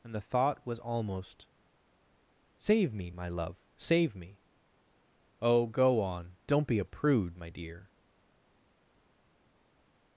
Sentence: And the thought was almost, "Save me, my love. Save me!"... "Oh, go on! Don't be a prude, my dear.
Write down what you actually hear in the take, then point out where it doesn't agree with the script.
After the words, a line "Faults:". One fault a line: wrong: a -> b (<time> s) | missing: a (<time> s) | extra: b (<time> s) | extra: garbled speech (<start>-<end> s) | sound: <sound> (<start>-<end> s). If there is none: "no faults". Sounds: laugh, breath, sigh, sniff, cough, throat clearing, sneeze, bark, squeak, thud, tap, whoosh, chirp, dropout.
And the thought was almost, "Save me, my love. Save me!"... "Oh, go on! Don't be a prude, my dear.
Faults:
no faults